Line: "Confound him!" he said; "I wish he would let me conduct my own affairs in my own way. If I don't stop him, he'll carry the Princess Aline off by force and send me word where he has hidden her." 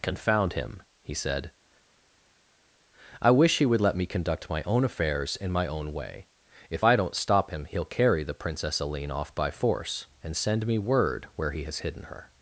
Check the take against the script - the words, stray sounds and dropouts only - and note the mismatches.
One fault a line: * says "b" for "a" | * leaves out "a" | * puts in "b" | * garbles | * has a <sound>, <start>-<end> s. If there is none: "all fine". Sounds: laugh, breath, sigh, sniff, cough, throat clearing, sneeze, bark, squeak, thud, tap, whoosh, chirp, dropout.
all fine